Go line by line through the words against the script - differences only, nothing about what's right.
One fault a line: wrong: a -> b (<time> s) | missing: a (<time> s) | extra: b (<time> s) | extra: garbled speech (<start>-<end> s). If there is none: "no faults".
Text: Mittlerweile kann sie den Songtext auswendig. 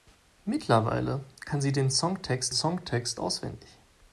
extra: Songtext (2.5 s)